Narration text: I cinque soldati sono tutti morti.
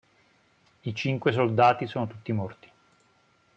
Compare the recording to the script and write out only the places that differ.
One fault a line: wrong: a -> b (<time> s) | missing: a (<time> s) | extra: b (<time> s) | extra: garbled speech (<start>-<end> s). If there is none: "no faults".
no faults